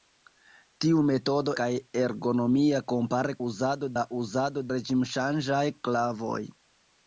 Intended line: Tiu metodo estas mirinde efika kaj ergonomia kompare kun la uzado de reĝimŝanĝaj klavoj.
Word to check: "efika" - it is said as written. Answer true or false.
false